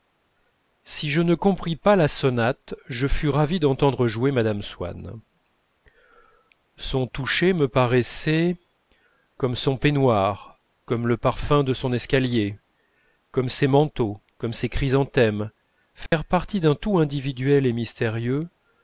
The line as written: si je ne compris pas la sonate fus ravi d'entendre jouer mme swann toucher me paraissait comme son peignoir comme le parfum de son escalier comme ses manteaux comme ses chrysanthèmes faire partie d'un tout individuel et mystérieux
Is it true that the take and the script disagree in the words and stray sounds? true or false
true